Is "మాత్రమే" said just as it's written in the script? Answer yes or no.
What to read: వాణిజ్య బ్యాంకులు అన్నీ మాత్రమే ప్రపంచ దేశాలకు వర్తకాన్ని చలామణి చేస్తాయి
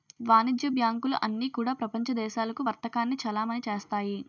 no